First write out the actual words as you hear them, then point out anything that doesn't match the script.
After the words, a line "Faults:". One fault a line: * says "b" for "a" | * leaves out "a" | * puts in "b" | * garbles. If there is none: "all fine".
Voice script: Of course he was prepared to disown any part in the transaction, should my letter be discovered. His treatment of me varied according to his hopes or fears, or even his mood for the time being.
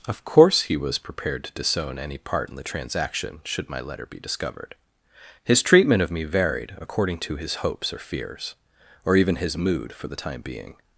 Of course he was prepared to disown any part in the transaction, should my letter be discovered. His treatment of me varied according to his hopes or fears, or even his mood for the time being.
Faults:
all fine